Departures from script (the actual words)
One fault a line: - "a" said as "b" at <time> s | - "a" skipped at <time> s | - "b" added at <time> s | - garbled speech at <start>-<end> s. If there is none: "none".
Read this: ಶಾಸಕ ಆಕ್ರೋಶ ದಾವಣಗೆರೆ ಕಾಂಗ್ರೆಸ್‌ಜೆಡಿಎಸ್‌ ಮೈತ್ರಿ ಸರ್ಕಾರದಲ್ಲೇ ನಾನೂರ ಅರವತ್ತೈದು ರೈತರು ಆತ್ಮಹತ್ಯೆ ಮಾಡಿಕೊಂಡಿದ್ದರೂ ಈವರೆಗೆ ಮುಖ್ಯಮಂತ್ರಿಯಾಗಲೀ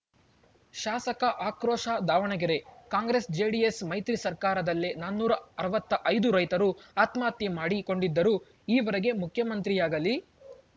none